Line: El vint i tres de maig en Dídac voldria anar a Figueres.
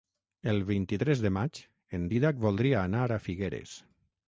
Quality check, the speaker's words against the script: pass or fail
pass